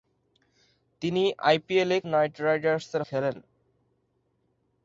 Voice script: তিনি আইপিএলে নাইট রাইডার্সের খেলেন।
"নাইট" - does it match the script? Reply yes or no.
yes